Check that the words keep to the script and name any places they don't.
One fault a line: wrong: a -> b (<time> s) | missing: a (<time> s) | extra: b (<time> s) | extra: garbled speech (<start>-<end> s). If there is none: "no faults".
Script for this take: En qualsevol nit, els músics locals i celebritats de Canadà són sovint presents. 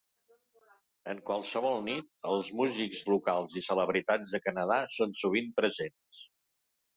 no faults